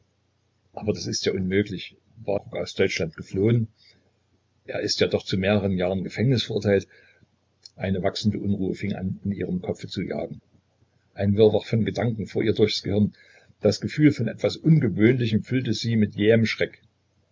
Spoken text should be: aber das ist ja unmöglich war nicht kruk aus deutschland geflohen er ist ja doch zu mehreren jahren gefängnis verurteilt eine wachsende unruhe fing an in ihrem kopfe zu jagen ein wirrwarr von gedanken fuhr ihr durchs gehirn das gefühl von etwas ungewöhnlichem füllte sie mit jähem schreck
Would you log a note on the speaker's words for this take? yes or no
yes